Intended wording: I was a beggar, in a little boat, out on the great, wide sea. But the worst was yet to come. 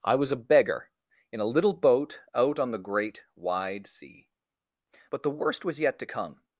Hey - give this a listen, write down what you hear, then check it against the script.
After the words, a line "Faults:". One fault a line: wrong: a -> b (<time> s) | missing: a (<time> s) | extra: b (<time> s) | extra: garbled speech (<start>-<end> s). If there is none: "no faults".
I was a beggar, in a little boat, out on the great, wide sea. But the worst was yet to come.
Faults:
no faults